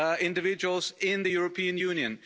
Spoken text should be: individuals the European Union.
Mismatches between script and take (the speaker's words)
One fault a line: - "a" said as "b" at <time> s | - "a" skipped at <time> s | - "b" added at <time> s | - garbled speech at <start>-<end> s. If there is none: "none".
- "in" added at 1.0 s